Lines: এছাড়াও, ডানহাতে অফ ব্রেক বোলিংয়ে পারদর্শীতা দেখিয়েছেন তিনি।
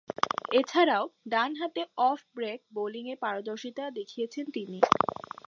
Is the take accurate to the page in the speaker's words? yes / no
yes